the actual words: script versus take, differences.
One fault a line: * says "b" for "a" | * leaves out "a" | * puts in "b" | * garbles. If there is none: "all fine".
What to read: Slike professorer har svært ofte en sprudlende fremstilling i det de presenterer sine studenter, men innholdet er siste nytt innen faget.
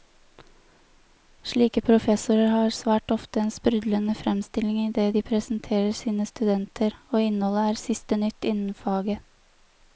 * says "og" for "men"